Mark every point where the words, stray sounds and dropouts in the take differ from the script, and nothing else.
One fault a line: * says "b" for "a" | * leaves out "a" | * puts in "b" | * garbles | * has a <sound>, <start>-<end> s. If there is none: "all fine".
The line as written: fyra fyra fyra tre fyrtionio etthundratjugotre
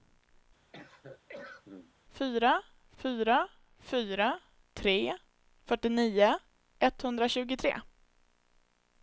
* has a cough, 0.7-1.9 s